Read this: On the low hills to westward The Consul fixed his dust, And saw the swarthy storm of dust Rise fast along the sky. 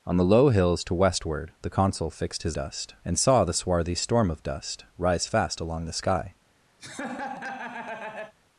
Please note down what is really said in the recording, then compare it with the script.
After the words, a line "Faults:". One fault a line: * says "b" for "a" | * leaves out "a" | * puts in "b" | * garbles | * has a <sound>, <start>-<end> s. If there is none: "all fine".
On the low hills to westward The Consul fixed his dust, And saw the swarthy storm of dust Rise fast along the sky.
Faults:
* has a laugh, 6.8-8.3 s